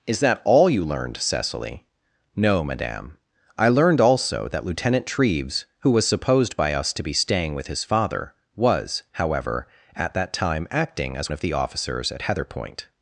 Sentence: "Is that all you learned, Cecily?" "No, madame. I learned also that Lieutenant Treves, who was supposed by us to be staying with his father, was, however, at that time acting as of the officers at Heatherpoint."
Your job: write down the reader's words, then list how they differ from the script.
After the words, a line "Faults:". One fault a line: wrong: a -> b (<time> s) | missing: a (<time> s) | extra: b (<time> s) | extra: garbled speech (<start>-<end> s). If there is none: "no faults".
"Is that all you learned, Cecily?" "No, madame. I learned also that Lieutenant Treves, who was supposed by us to be staying with his father, was, however, at that time acting as of the officers at Heatherpoint."
Faults:
no faults